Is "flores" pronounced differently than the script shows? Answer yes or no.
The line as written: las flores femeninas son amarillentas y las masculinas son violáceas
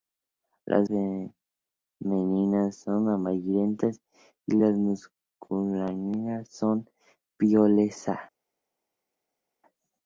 yes